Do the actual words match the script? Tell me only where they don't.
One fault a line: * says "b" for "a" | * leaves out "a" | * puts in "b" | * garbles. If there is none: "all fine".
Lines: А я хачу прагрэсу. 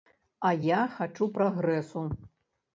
all fine